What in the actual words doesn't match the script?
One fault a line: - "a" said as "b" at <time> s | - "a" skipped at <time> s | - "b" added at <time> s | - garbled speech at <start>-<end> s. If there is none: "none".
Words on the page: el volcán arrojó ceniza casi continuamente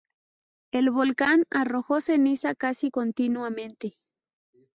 none